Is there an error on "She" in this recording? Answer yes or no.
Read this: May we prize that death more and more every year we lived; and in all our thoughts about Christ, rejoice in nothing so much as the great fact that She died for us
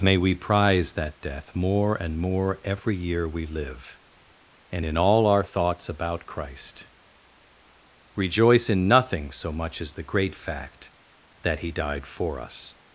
yes